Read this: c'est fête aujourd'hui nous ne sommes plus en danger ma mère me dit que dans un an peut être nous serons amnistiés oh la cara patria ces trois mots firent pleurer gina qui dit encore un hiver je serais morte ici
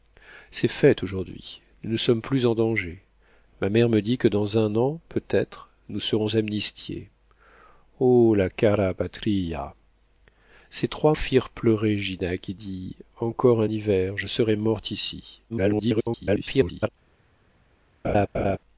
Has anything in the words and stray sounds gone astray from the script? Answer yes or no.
yes